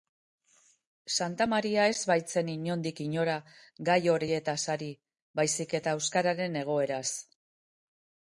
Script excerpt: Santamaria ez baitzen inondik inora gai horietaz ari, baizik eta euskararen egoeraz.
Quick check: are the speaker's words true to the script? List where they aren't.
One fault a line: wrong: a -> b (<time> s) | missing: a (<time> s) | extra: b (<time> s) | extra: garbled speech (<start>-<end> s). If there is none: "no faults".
no faults